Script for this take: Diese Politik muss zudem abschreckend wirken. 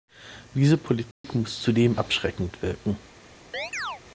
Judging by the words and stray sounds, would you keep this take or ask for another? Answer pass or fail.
fail